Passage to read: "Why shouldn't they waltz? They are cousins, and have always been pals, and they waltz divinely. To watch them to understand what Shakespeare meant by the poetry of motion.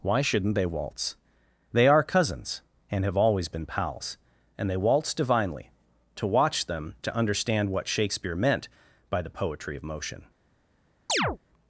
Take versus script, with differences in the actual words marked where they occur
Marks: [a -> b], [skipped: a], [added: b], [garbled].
"Why shouldn't they waltz? They are cousins, and have always been pals, and they waltz divinely. To watch them to understand what Shakespeare meant by the poetry of motion.